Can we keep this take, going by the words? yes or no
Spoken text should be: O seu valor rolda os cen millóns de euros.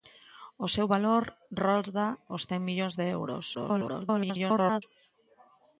no